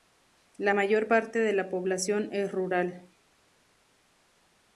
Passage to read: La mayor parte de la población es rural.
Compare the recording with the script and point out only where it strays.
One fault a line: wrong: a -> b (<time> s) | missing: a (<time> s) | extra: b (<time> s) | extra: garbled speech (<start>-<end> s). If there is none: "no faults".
no faults